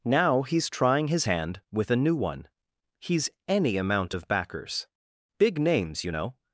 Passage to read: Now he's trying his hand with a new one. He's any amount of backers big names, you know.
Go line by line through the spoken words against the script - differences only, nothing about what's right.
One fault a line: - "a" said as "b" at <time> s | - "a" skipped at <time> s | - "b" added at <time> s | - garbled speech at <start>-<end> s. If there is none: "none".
none